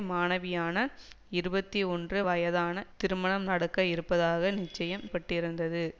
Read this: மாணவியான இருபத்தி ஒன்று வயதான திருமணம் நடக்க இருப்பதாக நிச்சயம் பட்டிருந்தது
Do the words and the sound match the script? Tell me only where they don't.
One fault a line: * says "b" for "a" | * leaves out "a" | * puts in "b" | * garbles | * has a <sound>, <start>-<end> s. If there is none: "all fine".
all fine